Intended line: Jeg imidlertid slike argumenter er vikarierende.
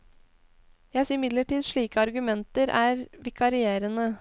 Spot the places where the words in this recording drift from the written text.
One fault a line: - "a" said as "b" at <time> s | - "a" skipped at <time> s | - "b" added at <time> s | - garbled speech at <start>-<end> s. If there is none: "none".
none